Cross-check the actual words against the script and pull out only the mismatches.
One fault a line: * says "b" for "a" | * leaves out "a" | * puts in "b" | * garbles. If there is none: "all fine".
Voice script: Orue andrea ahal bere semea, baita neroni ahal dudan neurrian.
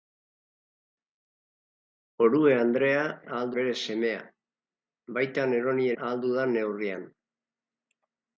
all fine